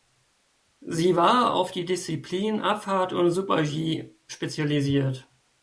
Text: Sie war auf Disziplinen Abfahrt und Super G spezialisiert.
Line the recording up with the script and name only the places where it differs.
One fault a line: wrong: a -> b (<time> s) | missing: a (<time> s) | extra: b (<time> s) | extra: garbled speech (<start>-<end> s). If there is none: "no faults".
extra: die (1.7 s)